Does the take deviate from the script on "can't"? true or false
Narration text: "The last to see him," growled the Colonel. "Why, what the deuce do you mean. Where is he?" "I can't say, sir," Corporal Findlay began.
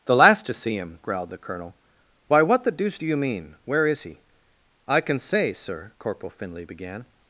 true